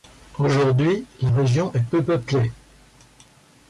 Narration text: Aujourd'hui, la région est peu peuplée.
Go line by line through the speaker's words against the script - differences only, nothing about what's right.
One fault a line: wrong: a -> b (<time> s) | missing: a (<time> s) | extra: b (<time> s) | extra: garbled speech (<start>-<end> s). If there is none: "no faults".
no faults